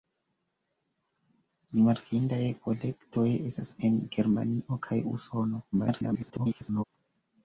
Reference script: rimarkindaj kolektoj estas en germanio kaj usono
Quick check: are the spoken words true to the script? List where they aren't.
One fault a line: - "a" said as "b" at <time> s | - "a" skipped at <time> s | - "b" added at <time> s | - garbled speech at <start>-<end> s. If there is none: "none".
- garbled speech at 5.7-6.8 s